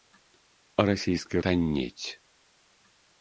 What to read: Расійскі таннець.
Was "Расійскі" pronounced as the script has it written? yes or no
yes